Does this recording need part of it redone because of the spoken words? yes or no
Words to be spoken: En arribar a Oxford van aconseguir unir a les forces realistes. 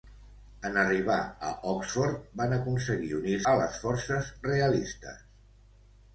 no